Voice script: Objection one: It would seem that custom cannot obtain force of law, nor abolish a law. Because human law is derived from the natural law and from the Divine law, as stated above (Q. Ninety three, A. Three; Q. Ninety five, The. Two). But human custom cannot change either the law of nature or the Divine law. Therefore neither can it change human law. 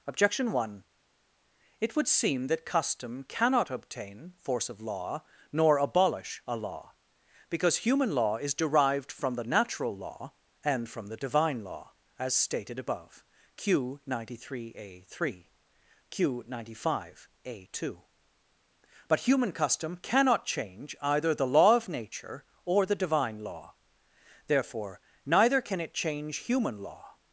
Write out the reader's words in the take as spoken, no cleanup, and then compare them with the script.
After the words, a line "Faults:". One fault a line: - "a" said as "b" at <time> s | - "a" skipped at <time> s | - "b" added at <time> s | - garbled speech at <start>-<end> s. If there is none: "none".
Objection one: It would seem that custom cannot obtain force of law, nor abolish a law. Because human law is derived from the natural law and from the Divine law, as stated above (Q. Ninety three, A. Three; Q. Ninety five, A. Two). But human custom cannot change either the law of nature or the Divine law. Therefore neither can it change human law.
Faults:
- "The" said as "A" at 17.4 s